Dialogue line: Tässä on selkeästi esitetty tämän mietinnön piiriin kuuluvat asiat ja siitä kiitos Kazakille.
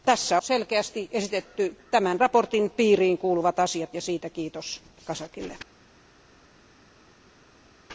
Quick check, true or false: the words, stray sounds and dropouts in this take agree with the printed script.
false